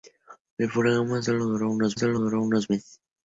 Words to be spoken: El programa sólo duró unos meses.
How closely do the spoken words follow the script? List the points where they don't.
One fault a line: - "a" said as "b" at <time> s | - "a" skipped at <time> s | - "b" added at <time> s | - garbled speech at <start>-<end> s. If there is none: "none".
- "sólo duró unos" added at 2.0 s